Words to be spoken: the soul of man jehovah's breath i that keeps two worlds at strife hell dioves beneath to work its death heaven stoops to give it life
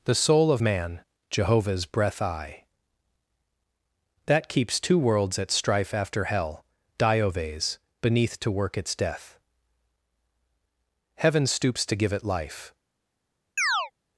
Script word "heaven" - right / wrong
right